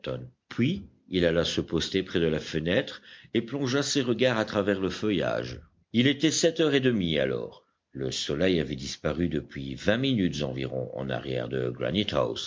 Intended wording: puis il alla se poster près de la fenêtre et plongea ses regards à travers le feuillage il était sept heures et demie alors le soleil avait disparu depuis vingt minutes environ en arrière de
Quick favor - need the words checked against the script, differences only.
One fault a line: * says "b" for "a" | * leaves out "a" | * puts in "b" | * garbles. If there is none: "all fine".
all fine